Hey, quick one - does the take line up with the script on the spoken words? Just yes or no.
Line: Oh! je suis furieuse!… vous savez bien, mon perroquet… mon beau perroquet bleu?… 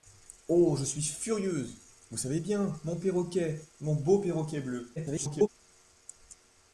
no